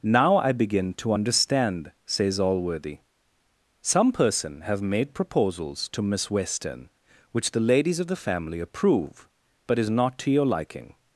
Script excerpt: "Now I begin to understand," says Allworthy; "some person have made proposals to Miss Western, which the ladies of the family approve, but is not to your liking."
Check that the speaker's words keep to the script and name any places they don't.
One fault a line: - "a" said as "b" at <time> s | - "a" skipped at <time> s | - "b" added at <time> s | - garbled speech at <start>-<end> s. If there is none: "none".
none